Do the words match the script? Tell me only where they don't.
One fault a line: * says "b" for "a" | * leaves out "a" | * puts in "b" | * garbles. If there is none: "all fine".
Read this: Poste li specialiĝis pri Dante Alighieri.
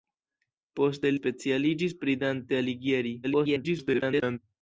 * leaves out "li"
* garbles